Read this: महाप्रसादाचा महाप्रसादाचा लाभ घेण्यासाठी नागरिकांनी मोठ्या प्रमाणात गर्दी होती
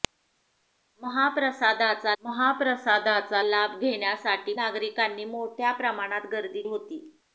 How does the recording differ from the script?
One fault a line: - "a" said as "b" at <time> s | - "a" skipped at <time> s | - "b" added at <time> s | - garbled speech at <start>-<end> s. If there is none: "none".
none